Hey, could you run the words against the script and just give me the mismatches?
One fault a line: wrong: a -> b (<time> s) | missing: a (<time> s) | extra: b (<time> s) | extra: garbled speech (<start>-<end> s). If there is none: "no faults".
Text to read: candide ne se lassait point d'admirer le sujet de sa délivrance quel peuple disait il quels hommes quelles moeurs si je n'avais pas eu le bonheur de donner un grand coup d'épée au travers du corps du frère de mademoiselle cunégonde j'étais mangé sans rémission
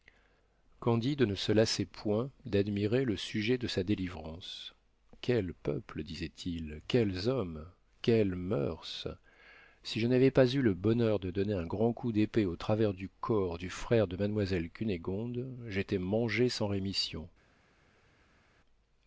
no faults